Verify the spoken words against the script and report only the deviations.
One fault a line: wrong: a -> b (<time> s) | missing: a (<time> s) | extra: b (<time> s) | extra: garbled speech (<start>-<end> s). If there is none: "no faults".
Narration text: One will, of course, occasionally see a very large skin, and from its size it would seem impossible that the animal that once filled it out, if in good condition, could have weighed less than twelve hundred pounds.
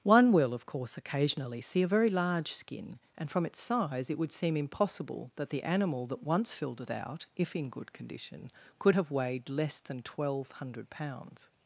no faults